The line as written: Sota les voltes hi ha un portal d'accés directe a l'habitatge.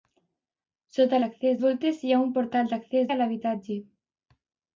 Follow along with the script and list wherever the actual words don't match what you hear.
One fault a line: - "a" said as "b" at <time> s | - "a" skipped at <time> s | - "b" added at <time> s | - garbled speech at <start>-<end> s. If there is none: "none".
- "les" said as "d'accés" at 1.2 s
- "directe" skipped at 3.1 s